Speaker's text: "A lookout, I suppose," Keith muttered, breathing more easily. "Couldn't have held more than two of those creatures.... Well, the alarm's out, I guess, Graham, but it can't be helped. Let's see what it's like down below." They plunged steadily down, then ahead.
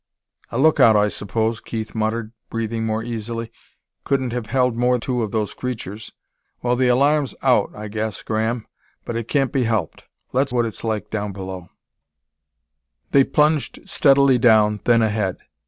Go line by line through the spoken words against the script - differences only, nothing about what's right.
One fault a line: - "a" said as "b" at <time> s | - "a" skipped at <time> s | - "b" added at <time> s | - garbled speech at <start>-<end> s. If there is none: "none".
- "than" skipped at 5.0 s
- "see" skipped at 10.5 s